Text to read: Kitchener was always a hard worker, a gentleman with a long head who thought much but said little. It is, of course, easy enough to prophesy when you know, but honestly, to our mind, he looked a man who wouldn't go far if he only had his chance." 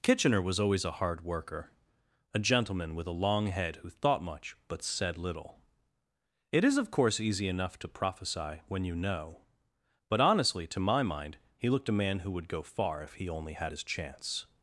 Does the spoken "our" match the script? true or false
false